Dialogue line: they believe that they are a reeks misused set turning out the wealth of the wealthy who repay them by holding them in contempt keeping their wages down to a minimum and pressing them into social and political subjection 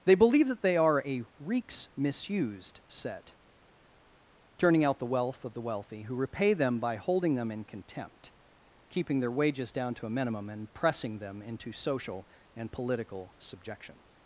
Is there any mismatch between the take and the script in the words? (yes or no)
no